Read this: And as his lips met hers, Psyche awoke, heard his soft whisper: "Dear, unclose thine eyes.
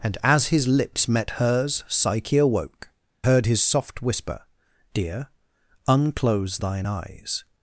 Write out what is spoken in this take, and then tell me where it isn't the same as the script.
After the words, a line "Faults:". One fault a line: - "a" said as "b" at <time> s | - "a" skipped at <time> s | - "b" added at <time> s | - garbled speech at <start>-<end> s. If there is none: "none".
And as his lips met hers, Psyche awoke, heard his soft whisper: "Dear, unclose thine eyes.
Faults:
none